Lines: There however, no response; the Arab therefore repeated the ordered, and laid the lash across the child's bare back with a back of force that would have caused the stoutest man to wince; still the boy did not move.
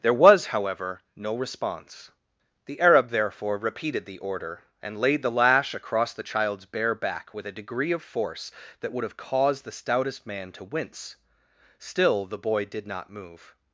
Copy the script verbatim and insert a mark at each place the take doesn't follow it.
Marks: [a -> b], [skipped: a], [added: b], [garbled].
There [added: was] however, no response; the Arab therefore repeated the [ordered, -> order] and laid the lash across the child's bare back with a [back -> degree] of force that would have caused the stoutest man to wince; still the boy did not move.